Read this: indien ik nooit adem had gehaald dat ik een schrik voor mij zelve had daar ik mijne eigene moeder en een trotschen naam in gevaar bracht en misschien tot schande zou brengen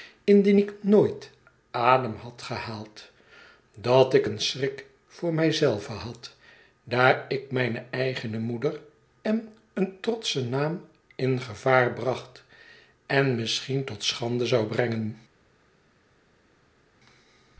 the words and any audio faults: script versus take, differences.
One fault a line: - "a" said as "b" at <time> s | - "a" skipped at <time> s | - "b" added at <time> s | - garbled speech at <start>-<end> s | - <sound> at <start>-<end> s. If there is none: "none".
none